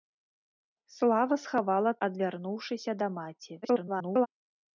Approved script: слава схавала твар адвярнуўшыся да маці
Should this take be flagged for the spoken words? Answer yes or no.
yes